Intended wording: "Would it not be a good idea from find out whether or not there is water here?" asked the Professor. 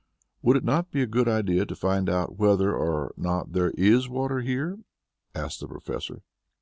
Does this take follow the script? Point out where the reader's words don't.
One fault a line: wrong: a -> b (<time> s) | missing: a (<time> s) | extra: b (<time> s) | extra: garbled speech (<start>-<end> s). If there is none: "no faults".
wrong: from -> to (1.6 s)